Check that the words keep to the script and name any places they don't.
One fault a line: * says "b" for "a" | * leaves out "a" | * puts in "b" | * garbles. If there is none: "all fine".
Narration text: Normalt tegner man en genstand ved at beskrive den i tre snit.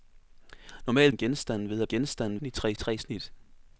* leaves out "tegner man"
* says "genstand" for "beskrive"
* puts in "tre"